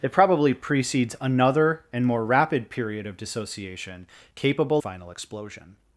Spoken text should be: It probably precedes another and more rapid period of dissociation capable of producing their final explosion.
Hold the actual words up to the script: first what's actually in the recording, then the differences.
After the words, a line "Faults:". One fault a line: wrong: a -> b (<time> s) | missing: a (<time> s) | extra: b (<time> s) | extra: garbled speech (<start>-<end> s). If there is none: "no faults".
It probably precedes another and more rapid period of dissociation capable final explosion.
Faults:
missing: of producing their (4.8 s)